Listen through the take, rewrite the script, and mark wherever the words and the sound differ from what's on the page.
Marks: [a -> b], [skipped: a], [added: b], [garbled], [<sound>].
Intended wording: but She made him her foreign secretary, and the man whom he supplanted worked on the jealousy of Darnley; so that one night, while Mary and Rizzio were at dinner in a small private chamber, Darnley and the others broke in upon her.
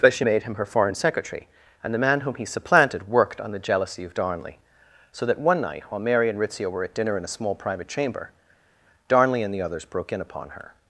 but She made him her foreign secretary, and the man whom he supplanted worked on the jealousy of Darnley; so that one night, while Mary and Rizzio were at dinner in a small private chamber, Darnley and the others broke in upon her.